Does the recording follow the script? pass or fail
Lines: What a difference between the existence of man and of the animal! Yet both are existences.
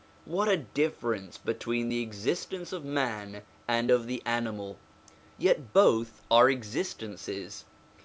pass